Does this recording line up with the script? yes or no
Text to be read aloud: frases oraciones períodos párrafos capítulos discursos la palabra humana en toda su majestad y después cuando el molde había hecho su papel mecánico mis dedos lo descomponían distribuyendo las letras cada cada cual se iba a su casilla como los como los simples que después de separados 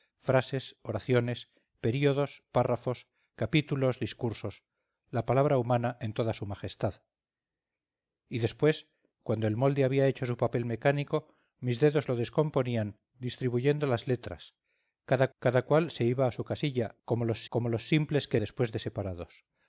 yes